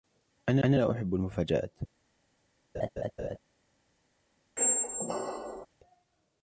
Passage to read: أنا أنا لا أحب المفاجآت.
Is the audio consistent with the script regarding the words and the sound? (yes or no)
no